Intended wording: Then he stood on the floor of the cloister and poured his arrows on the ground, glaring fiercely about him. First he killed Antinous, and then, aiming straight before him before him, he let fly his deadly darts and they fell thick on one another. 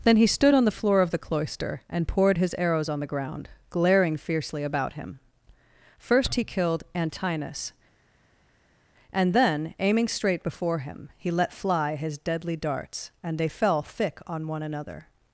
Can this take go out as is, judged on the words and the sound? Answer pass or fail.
fail